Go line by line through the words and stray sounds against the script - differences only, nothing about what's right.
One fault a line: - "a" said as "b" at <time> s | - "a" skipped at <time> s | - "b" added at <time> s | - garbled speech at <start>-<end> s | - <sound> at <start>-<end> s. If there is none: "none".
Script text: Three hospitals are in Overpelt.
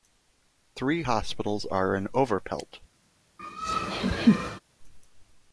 - laugh at 3.4-4.6 s